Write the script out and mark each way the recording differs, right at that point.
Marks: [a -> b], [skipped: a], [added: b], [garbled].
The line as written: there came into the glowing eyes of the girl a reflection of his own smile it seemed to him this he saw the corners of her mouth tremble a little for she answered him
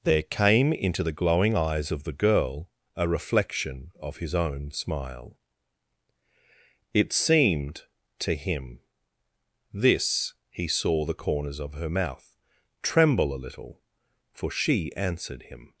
there came into the glowing eyes of the girl a reflection of his own smile it seemed to him this he saw the corners of her mouth tremble a little for she answered him